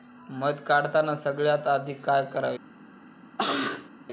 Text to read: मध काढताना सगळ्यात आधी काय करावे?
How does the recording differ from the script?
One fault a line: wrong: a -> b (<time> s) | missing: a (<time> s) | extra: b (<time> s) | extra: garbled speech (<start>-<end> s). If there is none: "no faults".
no faults